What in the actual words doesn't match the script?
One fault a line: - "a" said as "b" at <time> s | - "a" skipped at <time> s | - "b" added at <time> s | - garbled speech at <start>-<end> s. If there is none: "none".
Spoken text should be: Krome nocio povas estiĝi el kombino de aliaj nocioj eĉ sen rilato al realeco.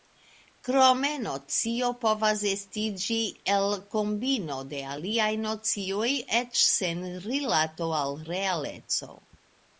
none